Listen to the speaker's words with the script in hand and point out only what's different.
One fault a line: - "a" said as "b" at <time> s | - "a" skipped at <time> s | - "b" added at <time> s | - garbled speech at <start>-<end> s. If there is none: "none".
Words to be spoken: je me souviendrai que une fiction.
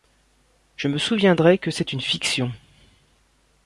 - "c'est" added at 1.7 s